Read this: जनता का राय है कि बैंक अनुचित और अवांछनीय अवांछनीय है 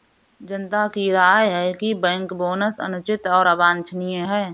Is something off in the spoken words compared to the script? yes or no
yes